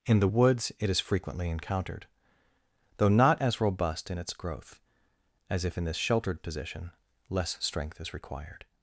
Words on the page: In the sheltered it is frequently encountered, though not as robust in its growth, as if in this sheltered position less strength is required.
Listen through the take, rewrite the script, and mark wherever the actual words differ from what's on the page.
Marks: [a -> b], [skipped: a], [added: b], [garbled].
In the [sheltered -> woods] it is frequently encountered, though not as robust in its growth, as if in this sheltered position less strength is required.